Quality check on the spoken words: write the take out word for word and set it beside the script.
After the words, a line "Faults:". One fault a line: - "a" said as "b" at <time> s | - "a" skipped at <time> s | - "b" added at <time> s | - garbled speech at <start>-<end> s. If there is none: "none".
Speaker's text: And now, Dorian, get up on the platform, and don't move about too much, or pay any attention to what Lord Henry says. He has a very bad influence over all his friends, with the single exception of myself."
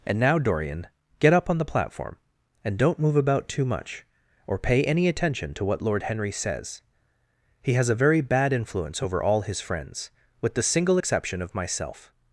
And now, Dorian, get up on the platform, and don't move about too much, or pay any attention to what Lord Henry says. He has a very bad influence over all his friends, with the single exception of myself."
Faults:
none